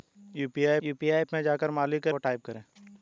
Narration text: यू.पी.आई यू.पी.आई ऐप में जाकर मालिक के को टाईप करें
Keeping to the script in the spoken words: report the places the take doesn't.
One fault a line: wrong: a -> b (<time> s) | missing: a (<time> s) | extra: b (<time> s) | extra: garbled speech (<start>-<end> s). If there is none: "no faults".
no faults